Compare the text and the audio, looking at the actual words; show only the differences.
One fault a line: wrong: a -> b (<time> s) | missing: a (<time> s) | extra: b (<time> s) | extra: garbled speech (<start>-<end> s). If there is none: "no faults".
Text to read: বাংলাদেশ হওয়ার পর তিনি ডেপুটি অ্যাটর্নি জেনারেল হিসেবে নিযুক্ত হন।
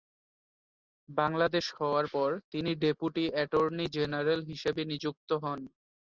no faults